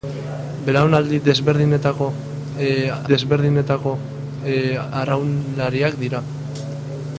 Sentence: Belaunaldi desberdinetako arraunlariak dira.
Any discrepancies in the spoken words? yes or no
yes